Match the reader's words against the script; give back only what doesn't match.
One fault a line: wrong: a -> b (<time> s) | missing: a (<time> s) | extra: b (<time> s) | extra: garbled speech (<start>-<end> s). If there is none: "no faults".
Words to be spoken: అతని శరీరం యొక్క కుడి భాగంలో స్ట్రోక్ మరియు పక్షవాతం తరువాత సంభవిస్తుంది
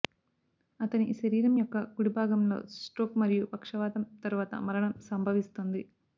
extra: మరణం (4.7 s)